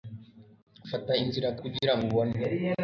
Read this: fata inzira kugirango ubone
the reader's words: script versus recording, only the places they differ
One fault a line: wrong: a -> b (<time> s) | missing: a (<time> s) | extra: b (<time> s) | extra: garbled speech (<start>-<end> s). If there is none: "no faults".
no faults